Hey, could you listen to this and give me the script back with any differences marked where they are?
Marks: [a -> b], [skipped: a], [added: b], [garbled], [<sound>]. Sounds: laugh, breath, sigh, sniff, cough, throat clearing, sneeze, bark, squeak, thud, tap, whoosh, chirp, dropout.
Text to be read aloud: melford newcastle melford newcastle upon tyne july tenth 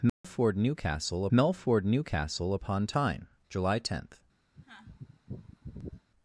melford [dropout] newcastle melford newcastle upon tyne july tenth [sneeze]